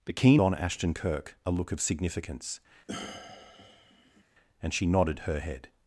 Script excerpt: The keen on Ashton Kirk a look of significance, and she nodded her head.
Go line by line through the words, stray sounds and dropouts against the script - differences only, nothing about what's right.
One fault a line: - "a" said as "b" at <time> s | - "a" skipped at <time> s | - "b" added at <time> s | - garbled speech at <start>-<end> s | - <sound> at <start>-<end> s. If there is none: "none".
- sigh at 2.9-4.2 s